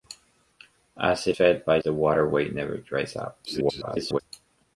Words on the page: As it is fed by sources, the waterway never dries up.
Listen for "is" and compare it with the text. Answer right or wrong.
wrong